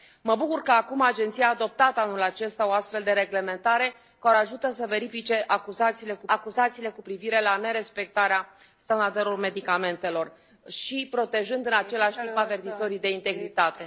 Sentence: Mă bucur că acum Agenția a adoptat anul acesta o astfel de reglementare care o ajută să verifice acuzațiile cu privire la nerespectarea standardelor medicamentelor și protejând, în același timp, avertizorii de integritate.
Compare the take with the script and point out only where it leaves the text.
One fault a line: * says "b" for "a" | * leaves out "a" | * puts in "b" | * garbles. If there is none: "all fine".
* puts in "acuzațiile cu"